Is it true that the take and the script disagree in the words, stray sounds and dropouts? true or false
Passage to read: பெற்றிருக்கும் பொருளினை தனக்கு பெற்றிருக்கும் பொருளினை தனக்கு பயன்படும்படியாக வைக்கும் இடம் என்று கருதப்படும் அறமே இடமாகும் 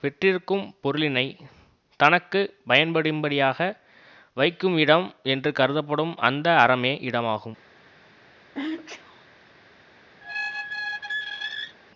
true